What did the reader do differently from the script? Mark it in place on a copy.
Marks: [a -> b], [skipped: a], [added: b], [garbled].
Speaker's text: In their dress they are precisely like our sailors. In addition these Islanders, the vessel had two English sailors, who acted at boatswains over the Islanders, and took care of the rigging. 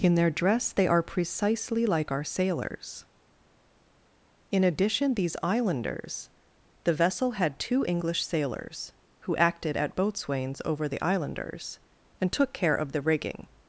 In their dress they are precisely like our sailors. In addition these Islanders, the vessel had two English sailors, who acted at boatswains over the Islanders, and took care of the rigging.